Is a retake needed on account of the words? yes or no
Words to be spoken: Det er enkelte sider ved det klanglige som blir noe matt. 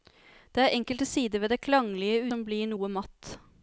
no